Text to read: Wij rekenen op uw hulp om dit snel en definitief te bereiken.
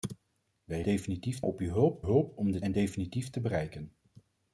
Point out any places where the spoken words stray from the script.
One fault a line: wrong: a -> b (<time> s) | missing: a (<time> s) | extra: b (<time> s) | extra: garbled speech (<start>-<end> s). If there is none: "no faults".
wrong: rekenen -> definitief (0.8 s)
extra: hulp (2.0 s)
missing: snel (2.6 s)